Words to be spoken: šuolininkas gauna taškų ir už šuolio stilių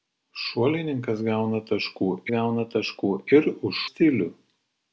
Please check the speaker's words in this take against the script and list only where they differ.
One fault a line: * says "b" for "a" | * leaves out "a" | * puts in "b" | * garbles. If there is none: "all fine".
* puts in "gauna taškų"
* leaves out "šuolio"